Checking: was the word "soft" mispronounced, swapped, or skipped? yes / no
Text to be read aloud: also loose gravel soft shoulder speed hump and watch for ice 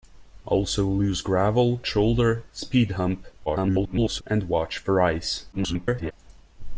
yes